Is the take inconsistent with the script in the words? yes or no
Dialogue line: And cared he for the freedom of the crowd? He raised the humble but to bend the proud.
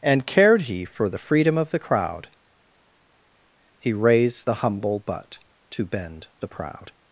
no